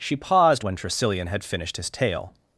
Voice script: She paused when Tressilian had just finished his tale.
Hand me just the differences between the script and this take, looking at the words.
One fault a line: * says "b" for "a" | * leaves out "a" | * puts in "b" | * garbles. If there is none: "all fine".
* leaves out "just"